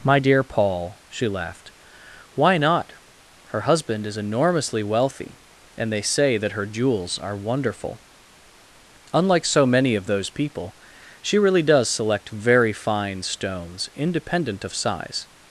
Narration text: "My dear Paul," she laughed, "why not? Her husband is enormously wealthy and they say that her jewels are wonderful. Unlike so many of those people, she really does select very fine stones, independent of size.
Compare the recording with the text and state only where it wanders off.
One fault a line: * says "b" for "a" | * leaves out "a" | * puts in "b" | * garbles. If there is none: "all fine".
all fine